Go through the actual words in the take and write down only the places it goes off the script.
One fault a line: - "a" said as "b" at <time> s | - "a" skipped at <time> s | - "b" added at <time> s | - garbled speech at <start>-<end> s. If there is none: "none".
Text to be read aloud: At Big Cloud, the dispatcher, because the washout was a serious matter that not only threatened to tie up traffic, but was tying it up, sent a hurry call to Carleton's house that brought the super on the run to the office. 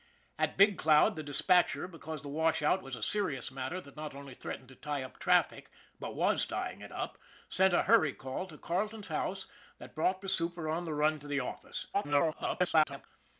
- garbled speech at 11.9-13.1 s